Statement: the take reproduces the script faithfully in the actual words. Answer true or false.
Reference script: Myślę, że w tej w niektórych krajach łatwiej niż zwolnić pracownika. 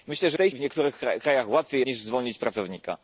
true